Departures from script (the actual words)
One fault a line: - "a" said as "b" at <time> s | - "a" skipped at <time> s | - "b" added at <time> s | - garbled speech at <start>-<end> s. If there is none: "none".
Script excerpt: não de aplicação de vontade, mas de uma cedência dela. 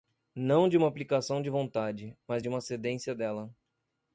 - "uma" added at 0.8 s